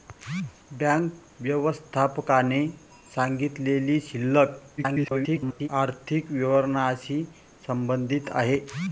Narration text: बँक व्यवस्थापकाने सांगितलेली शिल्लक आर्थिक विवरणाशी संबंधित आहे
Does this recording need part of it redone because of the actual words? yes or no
yes